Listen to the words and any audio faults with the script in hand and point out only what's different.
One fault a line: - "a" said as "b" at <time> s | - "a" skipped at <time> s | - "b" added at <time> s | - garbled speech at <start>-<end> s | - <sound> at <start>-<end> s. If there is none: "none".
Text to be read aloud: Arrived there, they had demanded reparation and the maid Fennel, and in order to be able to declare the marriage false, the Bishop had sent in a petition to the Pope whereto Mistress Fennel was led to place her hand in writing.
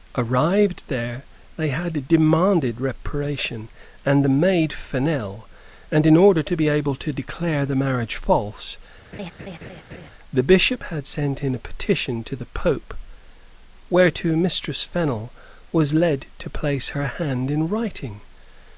- laugh at 9.1-10.1 s